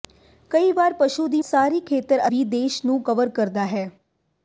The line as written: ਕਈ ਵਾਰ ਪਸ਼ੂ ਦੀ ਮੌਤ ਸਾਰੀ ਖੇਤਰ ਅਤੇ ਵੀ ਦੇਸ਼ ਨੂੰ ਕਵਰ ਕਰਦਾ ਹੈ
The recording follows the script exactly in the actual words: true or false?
false